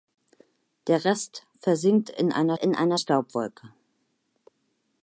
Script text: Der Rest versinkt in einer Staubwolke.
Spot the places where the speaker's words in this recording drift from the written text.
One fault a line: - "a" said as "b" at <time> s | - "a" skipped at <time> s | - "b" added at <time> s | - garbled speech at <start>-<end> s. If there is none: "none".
- "in einer" added at 2.5 s